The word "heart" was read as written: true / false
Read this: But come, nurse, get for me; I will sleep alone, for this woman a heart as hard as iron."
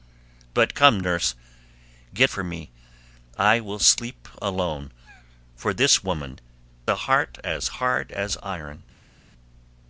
true